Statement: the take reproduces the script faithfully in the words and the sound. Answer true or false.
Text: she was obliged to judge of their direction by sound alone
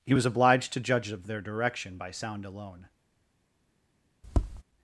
false